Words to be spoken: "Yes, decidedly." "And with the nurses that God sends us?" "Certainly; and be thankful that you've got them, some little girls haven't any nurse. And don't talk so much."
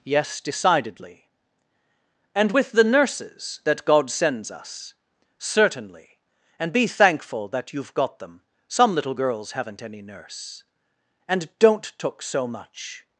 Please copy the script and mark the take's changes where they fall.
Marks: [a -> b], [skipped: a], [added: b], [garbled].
"Yes, decidedly." "And with the nurses that God sends us?" "Certainly; and be thankful that you've got them, some little girls haven't any nurse. And don't [talk -> took] so much."